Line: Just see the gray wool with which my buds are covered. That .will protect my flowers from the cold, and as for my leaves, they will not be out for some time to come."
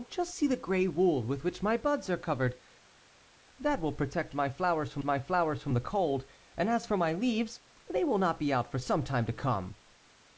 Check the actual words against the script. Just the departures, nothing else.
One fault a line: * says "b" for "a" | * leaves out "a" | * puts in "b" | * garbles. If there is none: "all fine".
* puts in "my flowers from"